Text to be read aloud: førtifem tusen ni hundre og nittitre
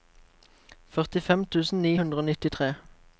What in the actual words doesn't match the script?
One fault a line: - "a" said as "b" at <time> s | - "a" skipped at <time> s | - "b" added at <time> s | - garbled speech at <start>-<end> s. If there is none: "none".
none